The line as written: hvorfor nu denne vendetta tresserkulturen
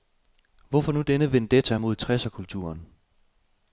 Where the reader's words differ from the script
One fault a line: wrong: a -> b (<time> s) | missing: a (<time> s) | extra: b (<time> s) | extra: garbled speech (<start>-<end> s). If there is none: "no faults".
extra: mod (1.7 s)